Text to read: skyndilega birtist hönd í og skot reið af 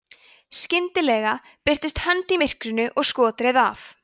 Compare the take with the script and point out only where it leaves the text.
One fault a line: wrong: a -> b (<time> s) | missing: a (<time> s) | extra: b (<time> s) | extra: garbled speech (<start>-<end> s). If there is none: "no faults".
extra: myrkrinu (2.4 s)